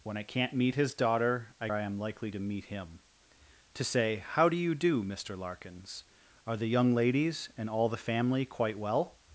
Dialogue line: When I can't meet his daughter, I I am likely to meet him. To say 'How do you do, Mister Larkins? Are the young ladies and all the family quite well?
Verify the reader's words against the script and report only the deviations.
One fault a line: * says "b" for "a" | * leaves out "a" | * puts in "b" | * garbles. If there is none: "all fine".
all fine